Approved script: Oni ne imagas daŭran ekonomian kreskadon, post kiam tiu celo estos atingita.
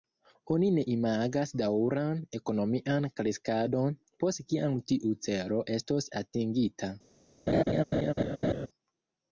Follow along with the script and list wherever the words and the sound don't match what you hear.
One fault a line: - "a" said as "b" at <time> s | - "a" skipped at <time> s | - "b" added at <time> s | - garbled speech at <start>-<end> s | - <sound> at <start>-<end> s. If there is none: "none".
- laugh at 7.5-8.7 s